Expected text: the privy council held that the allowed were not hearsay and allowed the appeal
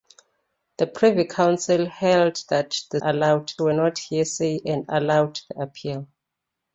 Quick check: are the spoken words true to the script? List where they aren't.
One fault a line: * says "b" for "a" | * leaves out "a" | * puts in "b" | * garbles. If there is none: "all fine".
all fine